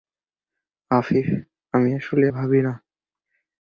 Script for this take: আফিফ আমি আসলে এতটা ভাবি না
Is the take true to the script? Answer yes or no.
no